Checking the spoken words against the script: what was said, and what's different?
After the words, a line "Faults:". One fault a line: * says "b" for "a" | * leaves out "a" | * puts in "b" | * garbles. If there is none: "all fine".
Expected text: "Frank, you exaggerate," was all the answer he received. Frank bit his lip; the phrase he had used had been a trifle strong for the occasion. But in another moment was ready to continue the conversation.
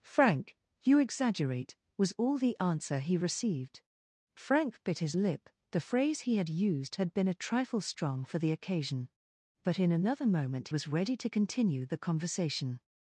"Frank, you exaggerate," was all the answer he received. Frank bit his lip; the phrase he had used had been a trifle strong for the occasion. But in another moment was ready to continue the conversation.
Faults:
all fine